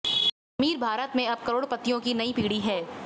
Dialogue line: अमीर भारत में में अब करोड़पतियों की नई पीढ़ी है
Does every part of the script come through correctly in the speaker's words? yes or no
no